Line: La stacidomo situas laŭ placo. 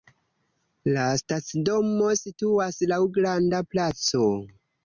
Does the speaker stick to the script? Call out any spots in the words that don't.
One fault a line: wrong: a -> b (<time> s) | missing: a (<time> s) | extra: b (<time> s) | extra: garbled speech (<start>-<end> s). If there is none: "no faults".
extra: granda (3.2 s)